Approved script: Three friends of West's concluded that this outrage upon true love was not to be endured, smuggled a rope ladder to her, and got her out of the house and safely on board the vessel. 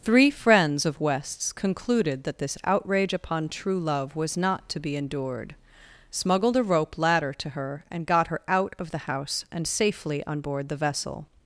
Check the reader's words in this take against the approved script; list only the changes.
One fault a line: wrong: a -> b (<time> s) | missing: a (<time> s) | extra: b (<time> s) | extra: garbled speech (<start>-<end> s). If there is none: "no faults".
no faults